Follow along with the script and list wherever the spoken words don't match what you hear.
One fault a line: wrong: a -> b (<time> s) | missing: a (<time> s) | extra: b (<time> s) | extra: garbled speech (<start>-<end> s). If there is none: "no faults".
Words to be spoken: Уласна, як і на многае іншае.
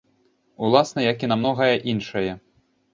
no faults